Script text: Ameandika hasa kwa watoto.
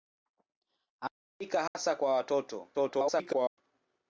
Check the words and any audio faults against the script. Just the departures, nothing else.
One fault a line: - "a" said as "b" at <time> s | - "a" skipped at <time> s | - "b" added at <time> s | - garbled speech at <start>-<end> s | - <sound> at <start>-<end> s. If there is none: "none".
- dropout at 1.7-1.8 s
- garbled speech at 2.7-3.6 s